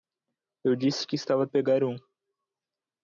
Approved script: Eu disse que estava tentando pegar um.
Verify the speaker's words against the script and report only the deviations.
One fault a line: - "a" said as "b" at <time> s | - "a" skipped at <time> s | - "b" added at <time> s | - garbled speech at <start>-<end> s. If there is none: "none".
- "tentando" skipped at 1.5 s